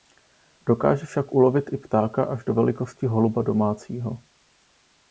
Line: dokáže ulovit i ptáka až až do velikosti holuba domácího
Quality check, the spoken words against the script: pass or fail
fail